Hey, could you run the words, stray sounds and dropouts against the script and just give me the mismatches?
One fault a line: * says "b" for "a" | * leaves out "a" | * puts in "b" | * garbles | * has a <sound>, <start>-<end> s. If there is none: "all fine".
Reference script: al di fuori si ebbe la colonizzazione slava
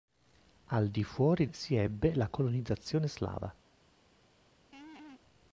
* has a laugh, 4.7-5.2 s